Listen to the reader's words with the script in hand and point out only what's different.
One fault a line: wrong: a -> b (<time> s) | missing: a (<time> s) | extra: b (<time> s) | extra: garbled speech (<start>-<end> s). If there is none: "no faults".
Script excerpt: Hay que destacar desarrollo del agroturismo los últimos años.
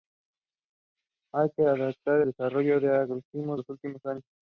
no faults